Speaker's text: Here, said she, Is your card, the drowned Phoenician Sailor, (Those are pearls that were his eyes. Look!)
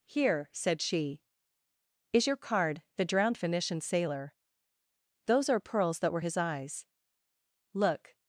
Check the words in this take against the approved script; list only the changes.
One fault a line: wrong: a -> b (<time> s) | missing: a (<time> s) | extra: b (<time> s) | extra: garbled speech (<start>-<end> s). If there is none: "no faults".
no faults